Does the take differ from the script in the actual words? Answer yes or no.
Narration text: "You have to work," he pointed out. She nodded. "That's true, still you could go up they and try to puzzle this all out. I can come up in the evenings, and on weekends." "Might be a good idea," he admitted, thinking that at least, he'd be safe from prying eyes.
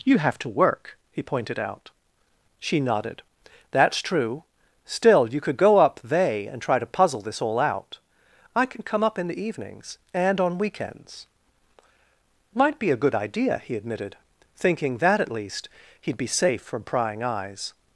no